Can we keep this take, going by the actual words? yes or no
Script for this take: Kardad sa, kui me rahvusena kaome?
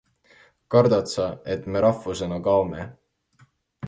no